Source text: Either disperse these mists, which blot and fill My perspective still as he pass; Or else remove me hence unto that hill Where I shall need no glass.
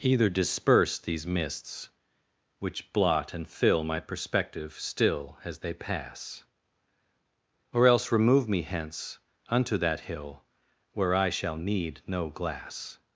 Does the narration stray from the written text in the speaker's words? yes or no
yes